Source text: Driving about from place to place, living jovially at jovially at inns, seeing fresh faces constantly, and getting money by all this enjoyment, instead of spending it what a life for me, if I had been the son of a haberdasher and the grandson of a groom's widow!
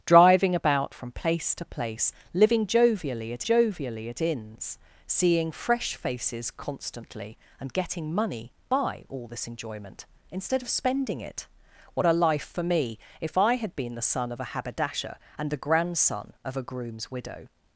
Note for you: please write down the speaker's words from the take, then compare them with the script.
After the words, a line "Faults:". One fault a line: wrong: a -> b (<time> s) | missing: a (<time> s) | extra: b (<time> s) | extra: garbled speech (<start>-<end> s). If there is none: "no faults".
Driving about from place to place, living jovially at jovially at inns, seeing fresh faces constantly, and getting money by all this enjoyment, instead of spending it what a life for me, if I had been the son of a haberdasher and the grandson of a groom's widow!
Faults:
no faults